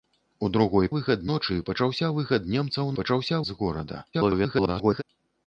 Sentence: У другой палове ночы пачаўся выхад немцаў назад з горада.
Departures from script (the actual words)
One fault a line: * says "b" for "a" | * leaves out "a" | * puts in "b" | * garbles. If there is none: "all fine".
* says "выхад" for "палове"
* says "пачаўся" for "назад"
* garbles